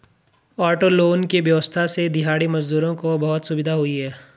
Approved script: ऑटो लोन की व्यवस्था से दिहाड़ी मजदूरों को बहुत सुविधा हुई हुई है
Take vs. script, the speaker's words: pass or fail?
fail